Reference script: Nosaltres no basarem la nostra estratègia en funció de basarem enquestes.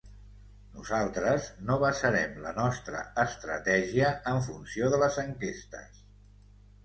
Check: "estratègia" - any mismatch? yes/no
no